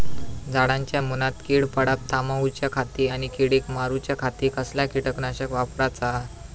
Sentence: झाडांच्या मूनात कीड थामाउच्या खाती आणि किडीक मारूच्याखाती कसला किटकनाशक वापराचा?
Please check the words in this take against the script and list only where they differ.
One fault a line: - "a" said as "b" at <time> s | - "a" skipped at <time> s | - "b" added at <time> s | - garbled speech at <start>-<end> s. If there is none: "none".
- "पडाप" added at 1.7 s